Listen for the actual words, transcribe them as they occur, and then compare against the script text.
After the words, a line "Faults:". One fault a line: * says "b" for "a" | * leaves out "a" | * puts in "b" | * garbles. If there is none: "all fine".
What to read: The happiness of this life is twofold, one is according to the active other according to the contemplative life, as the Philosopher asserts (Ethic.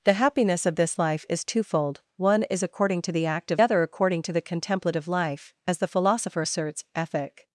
The happiness of this life is twofold, one is according to the active other according to the contemplative life, as the Philosopher asserts (Ethic.
Faults:
all fine